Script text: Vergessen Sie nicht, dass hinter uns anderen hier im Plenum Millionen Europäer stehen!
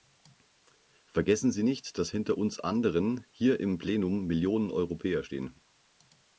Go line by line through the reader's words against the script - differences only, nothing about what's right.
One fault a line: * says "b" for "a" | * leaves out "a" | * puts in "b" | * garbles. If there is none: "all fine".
all fine